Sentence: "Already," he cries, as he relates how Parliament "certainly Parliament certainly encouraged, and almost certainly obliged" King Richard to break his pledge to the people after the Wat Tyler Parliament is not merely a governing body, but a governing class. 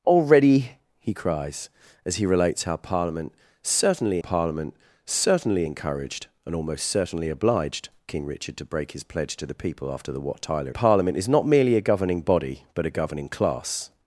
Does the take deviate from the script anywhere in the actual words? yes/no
no